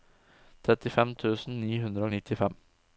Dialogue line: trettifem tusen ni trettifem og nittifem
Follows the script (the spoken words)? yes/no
no